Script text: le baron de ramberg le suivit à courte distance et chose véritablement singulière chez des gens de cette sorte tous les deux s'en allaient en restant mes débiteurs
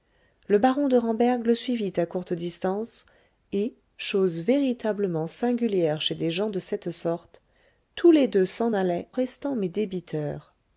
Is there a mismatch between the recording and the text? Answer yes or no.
yes